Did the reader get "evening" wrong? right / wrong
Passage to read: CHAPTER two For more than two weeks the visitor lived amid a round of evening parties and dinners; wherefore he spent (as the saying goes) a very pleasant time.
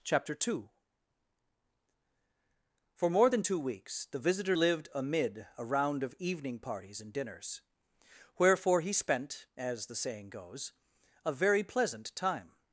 right